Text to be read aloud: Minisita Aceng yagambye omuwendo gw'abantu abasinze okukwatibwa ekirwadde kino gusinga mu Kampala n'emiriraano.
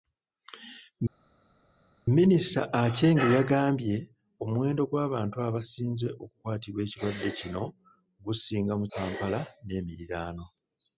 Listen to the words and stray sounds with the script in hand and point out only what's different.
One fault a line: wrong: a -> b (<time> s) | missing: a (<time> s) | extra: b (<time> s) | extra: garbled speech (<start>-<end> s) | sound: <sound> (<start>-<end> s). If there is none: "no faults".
no faults